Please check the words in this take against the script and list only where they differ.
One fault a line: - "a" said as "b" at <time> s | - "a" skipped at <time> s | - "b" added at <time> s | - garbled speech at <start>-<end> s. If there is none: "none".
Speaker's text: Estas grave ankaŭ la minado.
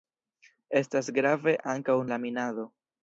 none